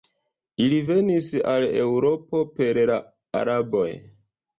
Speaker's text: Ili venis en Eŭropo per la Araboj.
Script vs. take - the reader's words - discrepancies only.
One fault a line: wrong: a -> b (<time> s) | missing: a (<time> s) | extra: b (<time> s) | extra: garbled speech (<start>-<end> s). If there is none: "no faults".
wrong: en -> al (1.5 s)